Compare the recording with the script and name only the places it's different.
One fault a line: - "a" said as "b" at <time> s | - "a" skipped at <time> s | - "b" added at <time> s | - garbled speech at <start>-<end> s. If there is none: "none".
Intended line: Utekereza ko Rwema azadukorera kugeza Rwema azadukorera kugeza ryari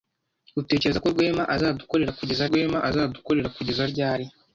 none